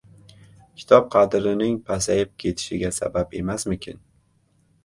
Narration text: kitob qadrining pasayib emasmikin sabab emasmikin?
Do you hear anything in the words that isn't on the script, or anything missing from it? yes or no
yes